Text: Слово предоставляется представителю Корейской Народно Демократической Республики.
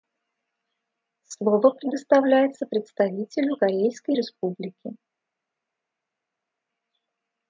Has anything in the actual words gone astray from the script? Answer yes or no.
yes